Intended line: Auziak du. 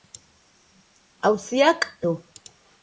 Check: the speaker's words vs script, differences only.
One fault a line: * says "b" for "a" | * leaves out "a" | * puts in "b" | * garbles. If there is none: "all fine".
all fine